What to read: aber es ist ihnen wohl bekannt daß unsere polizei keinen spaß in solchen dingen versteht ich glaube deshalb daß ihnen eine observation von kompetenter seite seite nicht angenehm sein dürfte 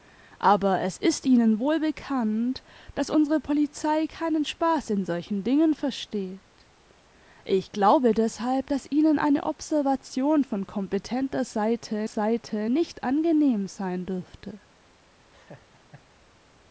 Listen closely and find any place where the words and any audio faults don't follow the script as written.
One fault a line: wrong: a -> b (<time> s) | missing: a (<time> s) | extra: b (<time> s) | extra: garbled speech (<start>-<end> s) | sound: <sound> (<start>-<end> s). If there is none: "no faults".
sound: laugh (15.3-16.1 s)